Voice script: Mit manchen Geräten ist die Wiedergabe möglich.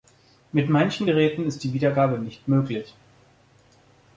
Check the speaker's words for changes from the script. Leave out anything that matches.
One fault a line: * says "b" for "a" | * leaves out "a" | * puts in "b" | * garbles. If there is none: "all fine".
* puts in "nicht"